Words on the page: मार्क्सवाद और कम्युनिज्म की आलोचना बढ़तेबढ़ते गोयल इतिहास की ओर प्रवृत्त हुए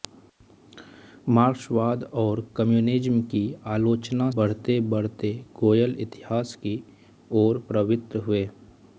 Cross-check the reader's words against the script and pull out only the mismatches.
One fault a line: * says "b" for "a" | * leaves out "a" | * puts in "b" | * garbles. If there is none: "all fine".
all fine